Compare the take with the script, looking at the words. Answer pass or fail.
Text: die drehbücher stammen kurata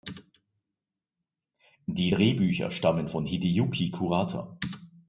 fail